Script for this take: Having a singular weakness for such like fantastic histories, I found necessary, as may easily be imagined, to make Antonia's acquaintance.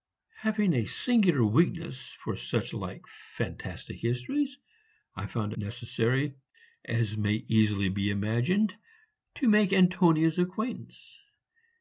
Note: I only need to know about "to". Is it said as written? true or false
true